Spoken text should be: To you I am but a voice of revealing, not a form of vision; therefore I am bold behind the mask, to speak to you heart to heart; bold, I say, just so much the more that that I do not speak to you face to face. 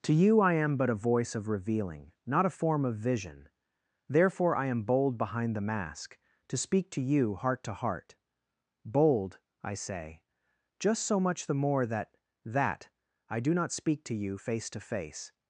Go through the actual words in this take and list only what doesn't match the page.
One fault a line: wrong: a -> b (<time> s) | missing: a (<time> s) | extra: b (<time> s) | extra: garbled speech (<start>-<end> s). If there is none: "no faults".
no faults